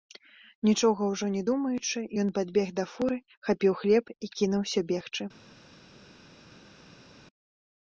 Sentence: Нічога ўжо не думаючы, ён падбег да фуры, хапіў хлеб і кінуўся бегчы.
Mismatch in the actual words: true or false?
false